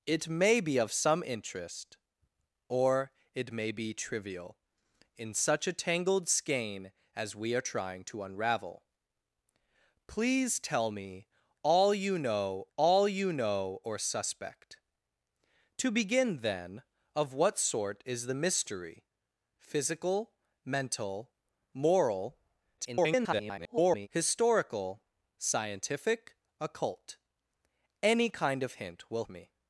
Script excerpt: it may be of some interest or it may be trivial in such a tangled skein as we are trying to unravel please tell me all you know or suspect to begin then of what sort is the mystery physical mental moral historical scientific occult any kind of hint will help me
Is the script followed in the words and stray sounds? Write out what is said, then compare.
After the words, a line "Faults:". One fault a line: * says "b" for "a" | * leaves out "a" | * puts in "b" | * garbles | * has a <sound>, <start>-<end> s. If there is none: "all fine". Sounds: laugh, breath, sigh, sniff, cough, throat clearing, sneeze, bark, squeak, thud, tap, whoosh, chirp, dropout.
it may be of some interest or it may be trivial in such a tangled skein as we are trying to unravel please tell me all you know all you know or suspect to begin then of what sort is the mystery physical mental moral [garbled] historical scientific occult any kind of hint will me
Faults:
* puts in "all you know"
* garbles
* leaves out "help"